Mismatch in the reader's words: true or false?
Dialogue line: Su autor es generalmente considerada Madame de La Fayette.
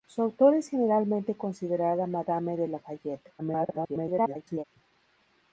true